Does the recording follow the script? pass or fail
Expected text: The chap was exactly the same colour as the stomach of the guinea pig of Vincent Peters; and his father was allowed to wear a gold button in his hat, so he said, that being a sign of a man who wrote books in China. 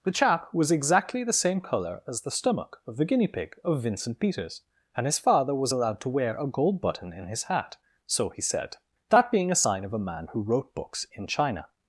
pass